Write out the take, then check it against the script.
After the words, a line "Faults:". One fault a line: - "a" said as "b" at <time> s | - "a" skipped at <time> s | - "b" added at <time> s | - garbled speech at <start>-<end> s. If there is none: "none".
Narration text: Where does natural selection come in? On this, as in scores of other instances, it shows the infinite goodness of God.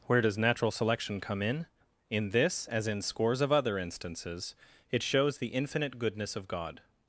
Where does natural selection come in? In this, as in scores of other instances, it shows the infinite goodness of God.
Faults:
- "On" said as "In" at 2.1 s